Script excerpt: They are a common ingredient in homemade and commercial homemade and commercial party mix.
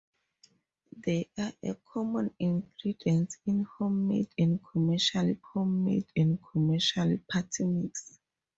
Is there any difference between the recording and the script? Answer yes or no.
no